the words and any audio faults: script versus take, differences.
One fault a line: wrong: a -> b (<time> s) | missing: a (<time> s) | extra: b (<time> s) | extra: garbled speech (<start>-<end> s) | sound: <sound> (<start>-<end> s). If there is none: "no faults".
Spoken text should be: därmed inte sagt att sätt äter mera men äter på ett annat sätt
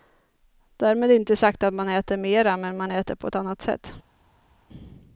wrong: sätt -> man (1.7 s)
extra: man (2.8 s)